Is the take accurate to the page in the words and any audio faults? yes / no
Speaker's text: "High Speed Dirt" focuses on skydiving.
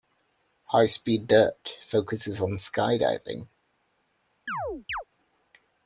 no